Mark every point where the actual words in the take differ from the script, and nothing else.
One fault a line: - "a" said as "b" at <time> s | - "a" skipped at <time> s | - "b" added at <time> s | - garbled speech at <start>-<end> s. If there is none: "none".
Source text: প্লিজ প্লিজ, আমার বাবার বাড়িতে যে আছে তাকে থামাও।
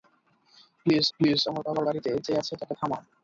none